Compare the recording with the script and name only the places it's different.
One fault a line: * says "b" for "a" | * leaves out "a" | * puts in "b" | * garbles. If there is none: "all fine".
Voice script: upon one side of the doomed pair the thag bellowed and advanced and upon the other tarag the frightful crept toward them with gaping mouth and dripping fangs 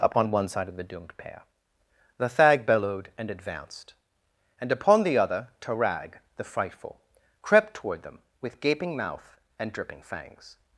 all fine